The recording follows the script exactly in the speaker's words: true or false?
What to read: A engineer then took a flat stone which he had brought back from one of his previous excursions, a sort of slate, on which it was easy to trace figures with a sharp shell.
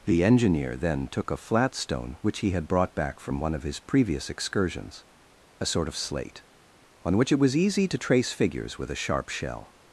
false